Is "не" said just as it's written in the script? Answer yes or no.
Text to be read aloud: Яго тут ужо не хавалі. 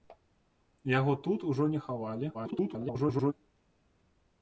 yes